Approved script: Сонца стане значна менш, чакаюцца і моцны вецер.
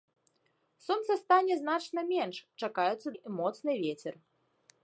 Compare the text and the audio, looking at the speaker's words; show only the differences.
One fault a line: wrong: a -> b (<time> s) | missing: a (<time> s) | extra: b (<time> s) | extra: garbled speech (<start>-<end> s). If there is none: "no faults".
no faults